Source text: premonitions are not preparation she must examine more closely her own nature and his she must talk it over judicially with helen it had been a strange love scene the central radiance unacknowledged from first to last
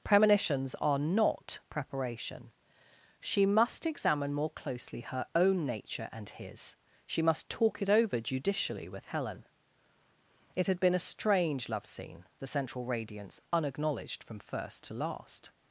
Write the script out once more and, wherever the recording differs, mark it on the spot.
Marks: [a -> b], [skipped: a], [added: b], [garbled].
premonitions are not preparation she must examine more closely her own nature and his she must talk it over judicially with helen it had been a strange love scene the central radiance unacknowledged from first to last